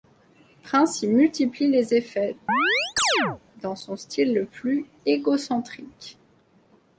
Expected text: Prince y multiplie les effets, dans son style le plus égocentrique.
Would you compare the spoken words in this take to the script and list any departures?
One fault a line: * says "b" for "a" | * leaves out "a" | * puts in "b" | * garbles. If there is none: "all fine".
all fine